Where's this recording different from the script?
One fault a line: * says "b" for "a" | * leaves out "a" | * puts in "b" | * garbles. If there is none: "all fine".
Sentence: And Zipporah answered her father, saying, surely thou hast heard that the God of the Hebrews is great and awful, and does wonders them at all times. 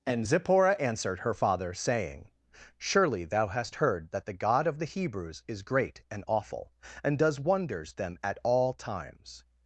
all fine